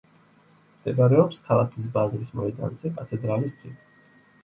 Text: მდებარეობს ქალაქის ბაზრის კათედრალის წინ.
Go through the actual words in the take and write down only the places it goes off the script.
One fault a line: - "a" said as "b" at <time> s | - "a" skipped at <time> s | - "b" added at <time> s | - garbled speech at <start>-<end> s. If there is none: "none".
- "მოედანზე" added at 2.4 s